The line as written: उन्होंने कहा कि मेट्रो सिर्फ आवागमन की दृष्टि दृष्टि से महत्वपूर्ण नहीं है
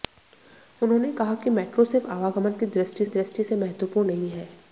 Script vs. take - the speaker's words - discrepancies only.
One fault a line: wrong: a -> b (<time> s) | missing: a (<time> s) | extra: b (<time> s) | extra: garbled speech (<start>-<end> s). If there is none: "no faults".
no faults